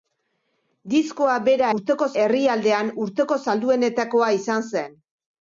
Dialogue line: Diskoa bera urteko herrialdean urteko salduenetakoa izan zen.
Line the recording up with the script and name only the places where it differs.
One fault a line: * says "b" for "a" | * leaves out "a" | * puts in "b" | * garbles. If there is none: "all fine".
all fine